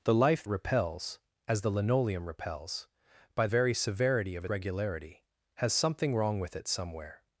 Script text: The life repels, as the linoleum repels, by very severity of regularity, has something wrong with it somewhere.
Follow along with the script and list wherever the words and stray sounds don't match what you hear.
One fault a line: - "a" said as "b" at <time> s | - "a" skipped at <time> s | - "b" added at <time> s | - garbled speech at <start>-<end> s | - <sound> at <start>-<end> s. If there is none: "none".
none